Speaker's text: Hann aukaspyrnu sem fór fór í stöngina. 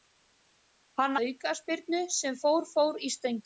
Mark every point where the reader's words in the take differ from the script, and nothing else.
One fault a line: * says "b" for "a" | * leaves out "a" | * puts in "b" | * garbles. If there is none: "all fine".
all fine